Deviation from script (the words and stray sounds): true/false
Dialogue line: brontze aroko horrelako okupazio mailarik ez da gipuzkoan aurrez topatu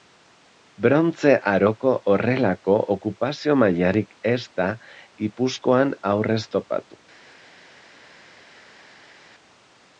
false